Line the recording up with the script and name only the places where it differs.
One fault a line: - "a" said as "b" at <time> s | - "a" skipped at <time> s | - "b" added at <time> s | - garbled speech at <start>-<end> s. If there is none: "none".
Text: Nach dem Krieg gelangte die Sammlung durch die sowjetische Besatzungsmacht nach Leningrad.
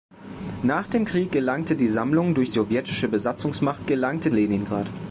- "die" skipped at 2.5 s
- "nach" said as "gelangte" at 3.9 s